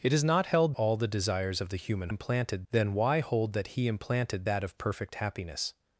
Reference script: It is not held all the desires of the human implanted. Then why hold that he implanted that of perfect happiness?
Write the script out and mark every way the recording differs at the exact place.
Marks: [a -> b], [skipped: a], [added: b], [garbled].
It is not held all the desires of the human implanted. Then why hold that he implanted that of perfect happiness?